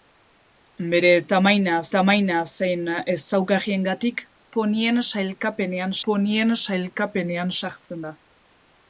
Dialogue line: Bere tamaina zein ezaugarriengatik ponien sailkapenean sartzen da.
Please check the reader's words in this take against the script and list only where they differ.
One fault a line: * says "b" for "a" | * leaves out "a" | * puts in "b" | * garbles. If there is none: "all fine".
* puts in "tamaina"
* puts in "ponien sailkapenean"